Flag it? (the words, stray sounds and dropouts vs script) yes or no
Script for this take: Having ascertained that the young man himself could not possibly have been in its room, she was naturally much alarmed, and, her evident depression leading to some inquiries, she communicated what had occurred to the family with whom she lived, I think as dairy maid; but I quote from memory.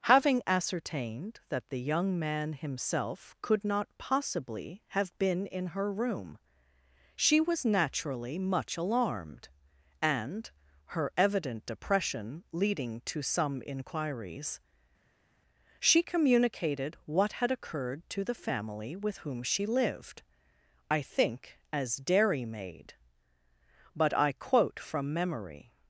yes